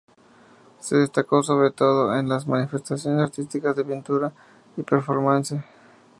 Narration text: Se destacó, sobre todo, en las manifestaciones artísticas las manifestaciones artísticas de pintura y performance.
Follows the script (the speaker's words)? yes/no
no